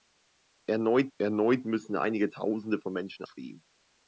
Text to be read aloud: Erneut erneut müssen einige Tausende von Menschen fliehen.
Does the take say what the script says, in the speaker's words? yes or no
yes